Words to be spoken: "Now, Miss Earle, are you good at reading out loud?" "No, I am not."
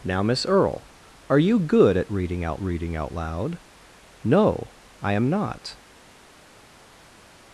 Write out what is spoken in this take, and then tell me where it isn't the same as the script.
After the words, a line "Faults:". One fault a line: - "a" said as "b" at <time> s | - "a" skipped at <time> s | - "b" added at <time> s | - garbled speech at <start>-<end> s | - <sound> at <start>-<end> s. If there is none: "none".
"Now, Miss Earle, are you good at reading out reading out loud?" "No, I am not."
Faults:
- "reading out" added at 2.6 s